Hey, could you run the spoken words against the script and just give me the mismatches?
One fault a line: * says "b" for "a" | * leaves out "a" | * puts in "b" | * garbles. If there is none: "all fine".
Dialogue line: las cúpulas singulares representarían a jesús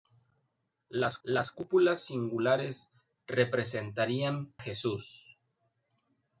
* puts in "las"
* leaves out "a"